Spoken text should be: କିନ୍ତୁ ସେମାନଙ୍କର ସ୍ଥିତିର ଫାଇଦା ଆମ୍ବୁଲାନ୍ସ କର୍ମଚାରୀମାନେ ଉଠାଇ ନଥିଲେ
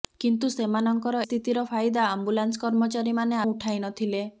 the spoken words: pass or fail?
pass